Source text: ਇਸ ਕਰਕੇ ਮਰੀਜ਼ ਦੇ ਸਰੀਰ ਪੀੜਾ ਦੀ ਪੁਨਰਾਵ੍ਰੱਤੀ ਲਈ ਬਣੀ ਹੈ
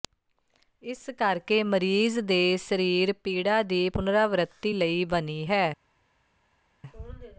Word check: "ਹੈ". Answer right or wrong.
right